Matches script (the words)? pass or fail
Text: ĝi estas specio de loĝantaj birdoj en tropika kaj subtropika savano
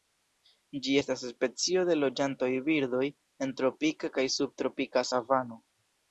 pass